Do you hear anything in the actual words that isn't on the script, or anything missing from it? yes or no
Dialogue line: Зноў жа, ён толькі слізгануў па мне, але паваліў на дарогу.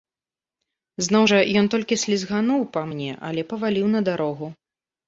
no